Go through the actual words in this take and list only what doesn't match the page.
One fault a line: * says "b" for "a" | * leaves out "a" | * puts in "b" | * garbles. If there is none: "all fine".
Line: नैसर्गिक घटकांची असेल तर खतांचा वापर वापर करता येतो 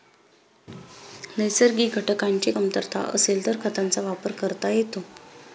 * puts in "कमतरता"
* leaves out "वापर"